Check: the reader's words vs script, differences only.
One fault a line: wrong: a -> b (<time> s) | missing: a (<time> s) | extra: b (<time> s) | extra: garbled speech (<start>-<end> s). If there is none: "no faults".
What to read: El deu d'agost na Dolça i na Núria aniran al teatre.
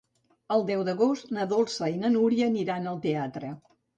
no faults